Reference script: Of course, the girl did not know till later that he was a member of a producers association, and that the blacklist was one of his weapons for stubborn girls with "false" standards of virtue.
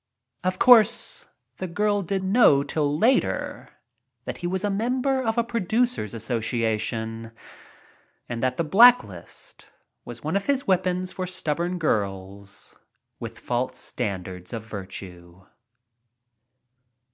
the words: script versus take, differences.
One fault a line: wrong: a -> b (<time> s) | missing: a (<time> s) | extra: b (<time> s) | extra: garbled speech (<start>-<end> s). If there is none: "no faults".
missing: not (2.2 s)